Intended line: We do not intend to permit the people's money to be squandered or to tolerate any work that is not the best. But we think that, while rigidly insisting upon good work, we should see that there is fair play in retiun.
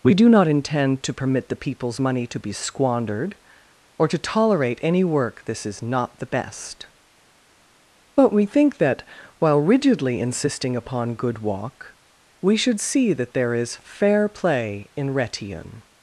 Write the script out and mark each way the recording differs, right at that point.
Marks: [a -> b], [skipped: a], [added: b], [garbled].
We do not intend to permit the people's money to be squandered or to tolerate any work [that -> this] is not the best. But we think that, while rigidly insisting upon good [work, -> walk] we should see that there is fair play in retiun.